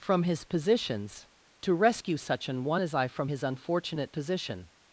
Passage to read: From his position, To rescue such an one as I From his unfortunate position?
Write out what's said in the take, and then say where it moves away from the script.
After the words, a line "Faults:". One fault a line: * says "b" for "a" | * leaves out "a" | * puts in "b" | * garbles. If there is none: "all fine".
From his positions, To rescue such an one as I From his unfortunate position?
Faults:
* says "positions" for "position"